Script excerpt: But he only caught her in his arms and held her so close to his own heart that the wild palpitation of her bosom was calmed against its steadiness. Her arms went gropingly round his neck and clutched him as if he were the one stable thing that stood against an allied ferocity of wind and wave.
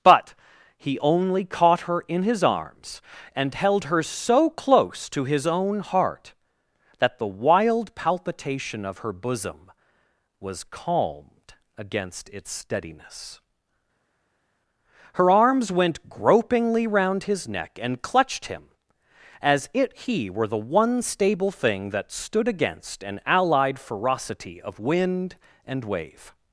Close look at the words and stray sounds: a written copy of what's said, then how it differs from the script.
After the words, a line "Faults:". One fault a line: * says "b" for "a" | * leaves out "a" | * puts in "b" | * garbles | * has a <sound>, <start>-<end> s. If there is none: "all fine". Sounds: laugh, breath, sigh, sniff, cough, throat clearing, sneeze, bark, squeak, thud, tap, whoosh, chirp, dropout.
But he only caught her in his arms and held her so close to his own heart that the wild palpitation of her bosom was calmed against its steadiness. Her arms went gropingly round his neck and clutched him as it he were the one stable thing that stood against an allied ferocity of wind and wave.
Faults:
* says "it" for "if"